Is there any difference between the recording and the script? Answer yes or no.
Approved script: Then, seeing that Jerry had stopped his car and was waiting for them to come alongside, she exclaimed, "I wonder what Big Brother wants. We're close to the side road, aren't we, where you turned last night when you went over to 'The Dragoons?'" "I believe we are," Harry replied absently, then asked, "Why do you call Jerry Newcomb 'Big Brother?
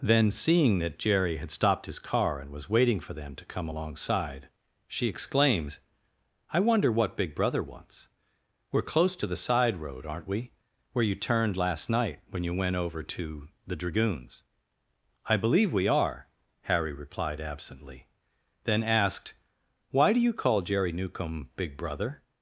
yes